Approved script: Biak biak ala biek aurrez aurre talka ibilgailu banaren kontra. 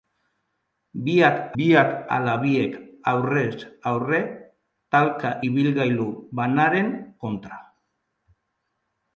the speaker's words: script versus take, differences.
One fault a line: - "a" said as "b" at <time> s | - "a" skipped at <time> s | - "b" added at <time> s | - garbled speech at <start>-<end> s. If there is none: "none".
none